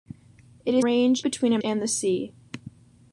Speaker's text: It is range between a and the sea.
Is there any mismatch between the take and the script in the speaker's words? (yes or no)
no